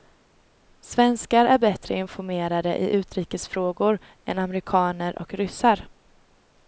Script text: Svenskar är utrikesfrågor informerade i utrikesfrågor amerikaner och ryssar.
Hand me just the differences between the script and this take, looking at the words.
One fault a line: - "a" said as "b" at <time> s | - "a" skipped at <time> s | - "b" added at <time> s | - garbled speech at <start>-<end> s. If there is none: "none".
- "utrikesfrågor" said as "bättre" at 1.6 s
- "än" added at 4.3 s